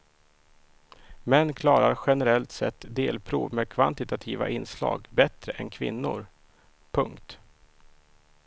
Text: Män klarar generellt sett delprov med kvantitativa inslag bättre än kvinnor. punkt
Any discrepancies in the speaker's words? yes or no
no